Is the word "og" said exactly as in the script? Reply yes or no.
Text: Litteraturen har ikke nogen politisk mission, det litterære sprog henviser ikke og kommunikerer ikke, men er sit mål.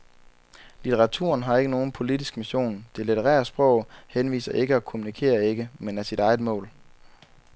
yes